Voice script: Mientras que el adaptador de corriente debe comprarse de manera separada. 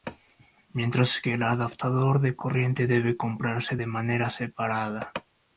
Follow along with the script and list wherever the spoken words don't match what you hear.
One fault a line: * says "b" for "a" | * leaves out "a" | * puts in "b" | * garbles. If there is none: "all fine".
all fine